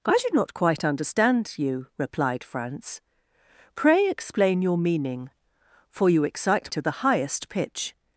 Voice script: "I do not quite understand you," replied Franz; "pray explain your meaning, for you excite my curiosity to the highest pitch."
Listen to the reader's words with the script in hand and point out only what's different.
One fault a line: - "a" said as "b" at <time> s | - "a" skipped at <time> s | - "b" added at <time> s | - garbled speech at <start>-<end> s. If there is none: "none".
- "my curiosity" skipped at 6.7 s